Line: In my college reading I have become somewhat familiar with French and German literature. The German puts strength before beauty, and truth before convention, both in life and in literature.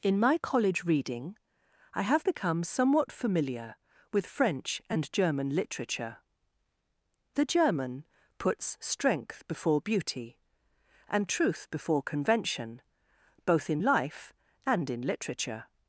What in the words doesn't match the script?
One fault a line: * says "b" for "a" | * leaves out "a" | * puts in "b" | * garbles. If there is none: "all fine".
all fine